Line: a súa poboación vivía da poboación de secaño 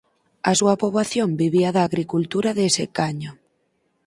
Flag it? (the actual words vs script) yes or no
yes